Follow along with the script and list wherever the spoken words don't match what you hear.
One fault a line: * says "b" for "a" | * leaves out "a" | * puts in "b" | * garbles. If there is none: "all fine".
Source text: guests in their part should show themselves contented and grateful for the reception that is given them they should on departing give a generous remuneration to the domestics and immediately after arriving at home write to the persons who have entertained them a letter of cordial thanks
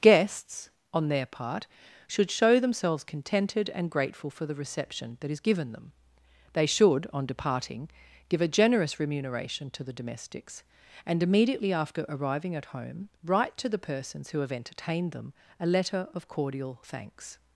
* says "on" for "in"